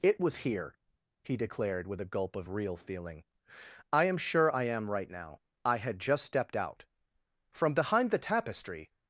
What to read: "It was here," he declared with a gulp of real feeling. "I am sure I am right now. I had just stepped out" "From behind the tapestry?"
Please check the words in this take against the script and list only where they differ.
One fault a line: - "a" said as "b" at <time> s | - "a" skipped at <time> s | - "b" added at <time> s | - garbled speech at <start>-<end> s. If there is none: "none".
none